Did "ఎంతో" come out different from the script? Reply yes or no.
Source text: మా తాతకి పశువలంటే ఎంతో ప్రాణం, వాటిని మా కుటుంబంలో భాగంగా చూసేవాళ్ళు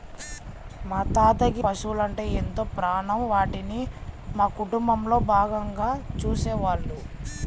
no